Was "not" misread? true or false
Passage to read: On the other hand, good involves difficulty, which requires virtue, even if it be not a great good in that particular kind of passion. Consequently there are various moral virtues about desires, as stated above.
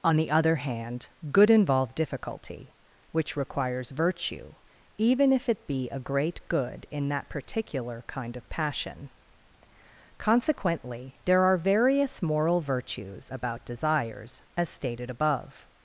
true